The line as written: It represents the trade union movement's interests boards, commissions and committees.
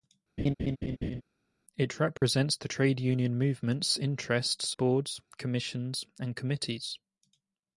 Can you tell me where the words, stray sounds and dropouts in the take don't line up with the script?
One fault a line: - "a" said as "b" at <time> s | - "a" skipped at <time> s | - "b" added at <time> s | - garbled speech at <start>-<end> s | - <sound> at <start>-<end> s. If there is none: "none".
- laugh at 0.4-1.2 s
- dropout at 2.2-2.2 s